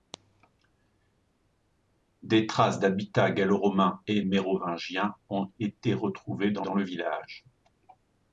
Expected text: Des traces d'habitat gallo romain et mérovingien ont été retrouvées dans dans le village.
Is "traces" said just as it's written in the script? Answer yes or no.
yes